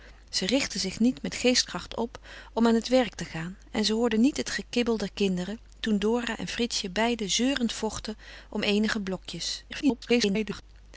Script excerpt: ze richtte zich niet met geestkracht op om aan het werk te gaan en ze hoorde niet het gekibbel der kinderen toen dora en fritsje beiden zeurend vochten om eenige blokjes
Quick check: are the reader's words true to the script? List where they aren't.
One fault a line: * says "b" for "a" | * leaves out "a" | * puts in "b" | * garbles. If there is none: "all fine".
* garbles